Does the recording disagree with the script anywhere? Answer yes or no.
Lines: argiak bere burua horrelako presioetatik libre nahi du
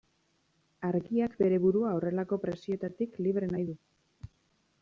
no